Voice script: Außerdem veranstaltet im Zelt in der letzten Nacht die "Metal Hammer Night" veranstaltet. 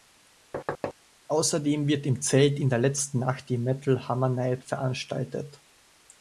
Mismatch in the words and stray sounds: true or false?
true